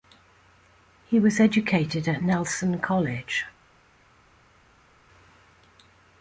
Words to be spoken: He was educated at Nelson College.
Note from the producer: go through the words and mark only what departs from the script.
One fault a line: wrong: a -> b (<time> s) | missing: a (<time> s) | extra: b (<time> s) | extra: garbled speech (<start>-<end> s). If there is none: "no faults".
no faults